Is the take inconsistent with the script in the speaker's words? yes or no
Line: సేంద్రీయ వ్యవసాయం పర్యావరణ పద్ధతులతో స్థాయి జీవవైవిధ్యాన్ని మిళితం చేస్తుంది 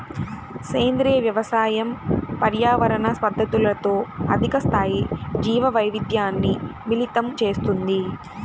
yes